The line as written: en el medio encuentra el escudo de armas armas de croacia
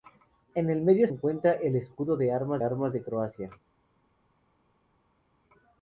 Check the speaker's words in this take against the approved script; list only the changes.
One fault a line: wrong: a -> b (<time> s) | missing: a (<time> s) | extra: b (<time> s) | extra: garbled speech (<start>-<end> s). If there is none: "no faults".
no faults